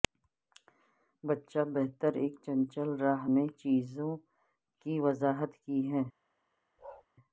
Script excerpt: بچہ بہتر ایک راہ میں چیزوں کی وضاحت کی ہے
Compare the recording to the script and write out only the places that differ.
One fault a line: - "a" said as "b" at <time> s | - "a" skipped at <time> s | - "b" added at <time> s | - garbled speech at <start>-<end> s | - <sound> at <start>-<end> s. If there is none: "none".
- "چنچل" added at 2.5 s
- bark at 6.8-7.1 s